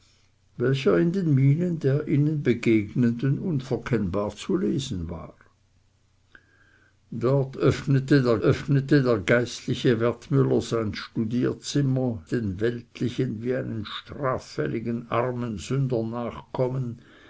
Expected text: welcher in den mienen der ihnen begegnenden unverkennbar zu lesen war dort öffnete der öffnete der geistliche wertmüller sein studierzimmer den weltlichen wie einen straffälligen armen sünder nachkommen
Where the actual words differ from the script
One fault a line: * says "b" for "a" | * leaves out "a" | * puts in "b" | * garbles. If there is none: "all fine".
all fine